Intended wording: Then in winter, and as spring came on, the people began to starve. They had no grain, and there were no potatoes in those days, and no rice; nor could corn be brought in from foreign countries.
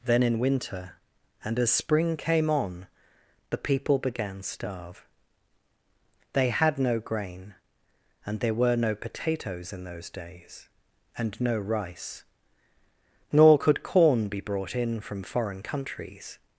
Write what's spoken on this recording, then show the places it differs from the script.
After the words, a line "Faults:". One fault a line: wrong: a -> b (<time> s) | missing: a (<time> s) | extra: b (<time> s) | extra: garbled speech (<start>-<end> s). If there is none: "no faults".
Then in winter, and as spring came on, the people began starve. They had no grain, and there were no potatoes in those days, and no rice; nor could corn be brought in from foreign countries.
Faults:
missing: to (4.4 s)